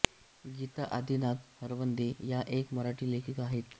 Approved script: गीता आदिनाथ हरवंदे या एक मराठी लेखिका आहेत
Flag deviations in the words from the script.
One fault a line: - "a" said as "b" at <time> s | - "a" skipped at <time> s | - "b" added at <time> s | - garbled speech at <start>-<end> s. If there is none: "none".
none